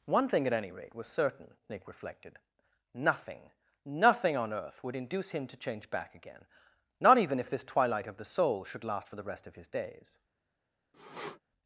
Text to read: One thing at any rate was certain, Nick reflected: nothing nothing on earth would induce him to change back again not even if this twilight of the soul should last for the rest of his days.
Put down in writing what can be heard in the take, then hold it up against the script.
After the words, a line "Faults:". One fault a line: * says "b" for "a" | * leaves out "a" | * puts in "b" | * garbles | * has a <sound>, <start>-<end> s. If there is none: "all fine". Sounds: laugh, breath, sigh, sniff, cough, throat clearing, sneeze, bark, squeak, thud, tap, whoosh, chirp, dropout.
One thing at any rate was certain, Nick reflected: nothing nothing on earth would induce him to change back again not even if this twilight of the soul should last for the rest of his days.
Faults:
* has a sniff, 10.9-11.4 s